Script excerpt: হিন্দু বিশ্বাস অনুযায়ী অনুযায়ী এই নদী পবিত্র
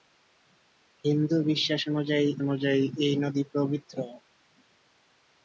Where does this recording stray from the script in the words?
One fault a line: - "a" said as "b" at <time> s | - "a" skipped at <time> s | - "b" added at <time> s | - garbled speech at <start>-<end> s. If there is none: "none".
none